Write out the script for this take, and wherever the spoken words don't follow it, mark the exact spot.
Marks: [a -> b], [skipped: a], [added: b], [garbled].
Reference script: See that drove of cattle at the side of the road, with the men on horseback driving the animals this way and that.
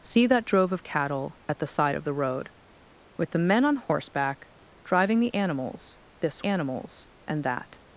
See that drove of cattle at the side of the road, with the men on horseback driving the animals this [way -> animals] and that.